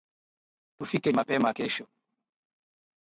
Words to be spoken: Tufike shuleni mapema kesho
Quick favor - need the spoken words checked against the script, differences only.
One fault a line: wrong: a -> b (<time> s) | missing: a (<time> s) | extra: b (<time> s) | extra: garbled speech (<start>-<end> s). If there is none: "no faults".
missing: shuleni (1.1 s)